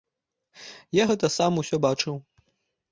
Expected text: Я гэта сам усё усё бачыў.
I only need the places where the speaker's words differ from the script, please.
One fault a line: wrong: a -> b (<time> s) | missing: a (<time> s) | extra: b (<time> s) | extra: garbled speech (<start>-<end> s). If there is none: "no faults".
missing: усё (1.8 s)